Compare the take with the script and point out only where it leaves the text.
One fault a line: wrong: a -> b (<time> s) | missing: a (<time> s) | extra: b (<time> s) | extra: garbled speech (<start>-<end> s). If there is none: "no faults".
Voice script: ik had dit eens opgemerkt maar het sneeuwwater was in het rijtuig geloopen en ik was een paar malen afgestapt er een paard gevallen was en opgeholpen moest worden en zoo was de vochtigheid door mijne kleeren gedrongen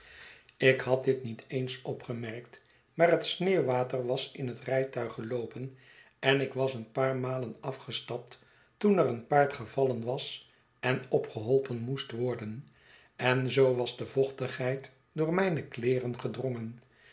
extra: niet (1.2 s)
extra: toen (8.8 s)